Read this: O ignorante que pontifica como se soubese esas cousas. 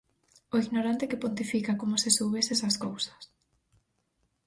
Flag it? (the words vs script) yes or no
no